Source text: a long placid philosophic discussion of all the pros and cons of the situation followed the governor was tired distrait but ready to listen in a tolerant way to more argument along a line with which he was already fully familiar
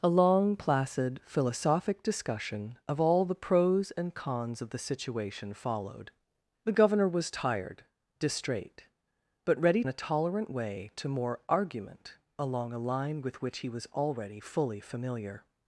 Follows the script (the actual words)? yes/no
no